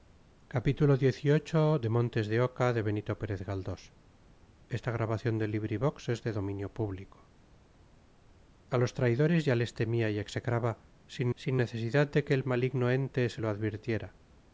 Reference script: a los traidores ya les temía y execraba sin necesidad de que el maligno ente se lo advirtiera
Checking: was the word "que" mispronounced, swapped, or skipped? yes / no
no